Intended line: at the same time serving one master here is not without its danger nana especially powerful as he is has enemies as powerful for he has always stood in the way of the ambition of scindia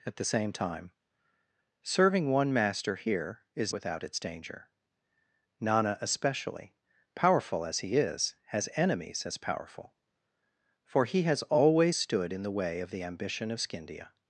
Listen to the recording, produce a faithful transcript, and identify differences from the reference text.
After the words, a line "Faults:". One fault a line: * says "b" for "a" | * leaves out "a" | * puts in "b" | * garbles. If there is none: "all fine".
at the same time serving one master here is without its danger nana especially powerful as he is has enemies as powerful for he has always stood in the way of the ambition of scindia
Faults:
* leaves out "not"